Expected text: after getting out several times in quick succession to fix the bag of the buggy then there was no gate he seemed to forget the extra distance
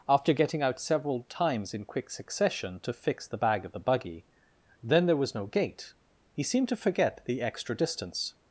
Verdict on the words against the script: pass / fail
pass